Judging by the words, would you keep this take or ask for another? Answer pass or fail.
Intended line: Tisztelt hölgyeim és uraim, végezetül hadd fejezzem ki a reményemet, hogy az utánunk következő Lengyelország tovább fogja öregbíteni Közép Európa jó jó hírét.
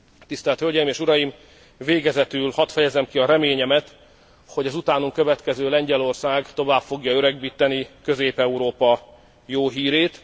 fail